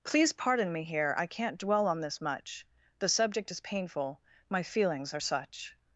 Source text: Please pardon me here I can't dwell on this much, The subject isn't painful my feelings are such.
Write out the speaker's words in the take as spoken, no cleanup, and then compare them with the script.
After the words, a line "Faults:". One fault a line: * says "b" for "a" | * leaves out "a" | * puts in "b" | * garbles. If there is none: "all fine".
Please pardon me here I can't dwell on this much, The subject is painful my feelings are such.
Faults:
* says "is" for "isn't"